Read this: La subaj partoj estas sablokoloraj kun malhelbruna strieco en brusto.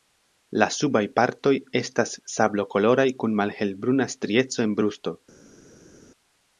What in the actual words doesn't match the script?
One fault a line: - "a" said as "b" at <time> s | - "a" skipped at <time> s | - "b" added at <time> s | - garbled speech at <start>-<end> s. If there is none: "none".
none